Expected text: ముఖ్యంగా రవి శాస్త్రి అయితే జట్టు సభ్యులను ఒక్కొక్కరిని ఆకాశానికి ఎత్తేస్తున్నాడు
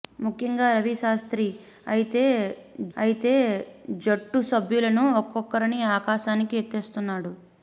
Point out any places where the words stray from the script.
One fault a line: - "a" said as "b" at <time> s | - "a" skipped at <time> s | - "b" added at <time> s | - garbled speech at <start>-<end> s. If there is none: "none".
- "అయితే" added at 3.0 s